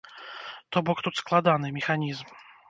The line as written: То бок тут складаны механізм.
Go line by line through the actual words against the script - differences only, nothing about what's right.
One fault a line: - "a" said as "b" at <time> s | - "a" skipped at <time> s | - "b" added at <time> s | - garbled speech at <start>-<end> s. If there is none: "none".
none